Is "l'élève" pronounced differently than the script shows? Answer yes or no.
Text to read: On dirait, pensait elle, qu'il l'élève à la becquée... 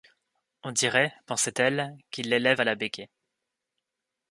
no